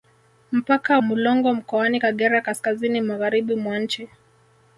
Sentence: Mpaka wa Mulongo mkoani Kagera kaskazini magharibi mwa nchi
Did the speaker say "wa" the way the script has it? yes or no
no